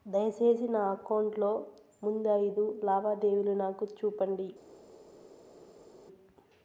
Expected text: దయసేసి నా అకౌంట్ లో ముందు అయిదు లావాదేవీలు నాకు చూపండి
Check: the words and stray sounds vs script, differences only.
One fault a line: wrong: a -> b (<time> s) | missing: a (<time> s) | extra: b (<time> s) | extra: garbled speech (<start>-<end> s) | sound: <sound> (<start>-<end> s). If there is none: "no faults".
no faults